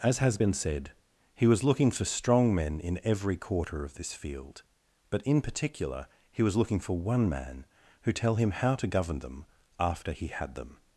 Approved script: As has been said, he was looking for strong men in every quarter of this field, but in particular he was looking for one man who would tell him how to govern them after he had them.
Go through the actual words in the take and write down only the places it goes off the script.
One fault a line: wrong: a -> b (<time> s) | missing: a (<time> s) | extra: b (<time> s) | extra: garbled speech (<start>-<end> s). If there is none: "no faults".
missing: would (8.1 s)